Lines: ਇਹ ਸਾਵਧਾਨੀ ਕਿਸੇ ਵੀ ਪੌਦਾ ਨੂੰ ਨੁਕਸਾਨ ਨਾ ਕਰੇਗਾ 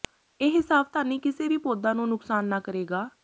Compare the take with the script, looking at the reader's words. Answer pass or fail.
pass